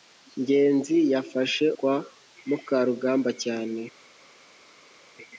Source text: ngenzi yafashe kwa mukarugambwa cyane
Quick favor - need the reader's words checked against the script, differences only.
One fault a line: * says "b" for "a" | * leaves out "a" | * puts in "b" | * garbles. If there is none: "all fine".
all fine